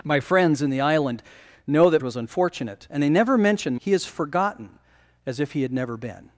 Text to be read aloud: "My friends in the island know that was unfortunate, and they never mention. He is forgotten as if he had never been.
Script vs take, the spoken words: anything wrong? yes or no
no